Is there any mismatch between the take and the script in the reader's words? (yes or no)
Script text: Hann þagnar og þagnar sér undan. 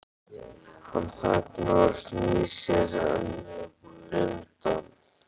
yes